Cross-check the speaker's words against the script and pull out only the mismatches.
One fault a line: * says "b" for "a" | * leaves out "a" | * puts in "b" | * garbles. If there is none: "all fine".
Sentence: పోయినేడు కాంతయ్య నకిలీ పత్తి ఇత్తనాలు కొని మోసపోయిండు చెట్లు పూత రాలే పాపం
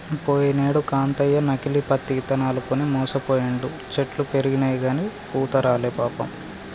* puts in "పెరిగినయిగని"